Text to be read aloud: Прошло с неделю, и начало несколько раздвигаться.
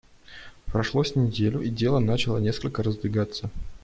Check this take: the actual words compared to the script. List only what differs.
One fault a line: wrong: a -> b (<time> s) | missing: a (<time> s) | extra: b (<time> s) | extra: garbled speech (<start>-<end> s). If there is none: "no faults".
extra: дело (1.7 s)